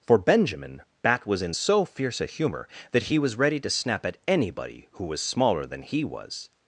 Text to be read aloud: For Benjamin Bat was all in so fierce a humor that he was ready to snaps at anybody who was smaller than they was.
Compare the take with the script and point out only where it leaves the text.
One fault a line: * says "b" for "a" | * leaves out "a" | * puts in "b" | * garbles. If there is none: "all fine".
* leaves out "all"
* says "snap" for "snaps"
* says "he" for "they"